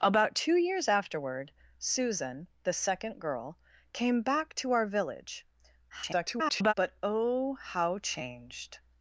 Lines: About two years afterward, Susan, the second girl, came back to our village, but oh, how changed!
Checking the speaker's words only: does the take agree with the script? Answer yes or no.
no